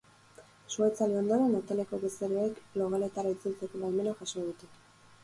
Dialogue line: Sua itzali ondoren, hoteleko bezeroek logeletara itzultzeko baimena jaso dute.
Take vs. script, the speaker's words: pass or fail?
pass